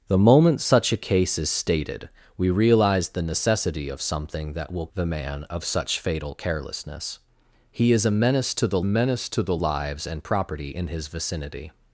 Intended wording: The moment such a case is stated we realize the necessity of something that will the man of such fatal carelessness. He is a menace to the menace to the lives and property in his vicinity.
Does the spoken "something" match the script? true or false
true